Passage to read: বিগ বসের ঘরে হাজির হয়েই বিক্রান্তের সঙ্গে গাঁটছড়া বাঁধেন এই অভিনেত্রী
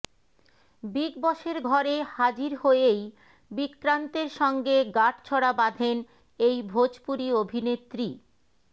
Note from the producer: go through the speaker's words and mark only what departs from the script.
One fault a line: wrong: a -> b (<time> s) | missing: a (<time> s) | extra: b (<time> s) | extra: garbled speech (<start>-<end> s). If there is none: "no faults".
extra: ভোজপুরি (6.7 s)